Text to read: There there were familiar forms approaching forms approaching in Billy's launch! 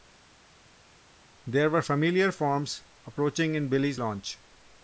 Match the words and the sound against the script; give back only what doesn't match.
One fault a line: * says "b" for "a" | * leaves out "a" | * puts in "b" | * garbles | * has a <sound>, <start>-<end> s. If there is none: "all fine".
* leaves out "there"
* leaves out "forms approaching"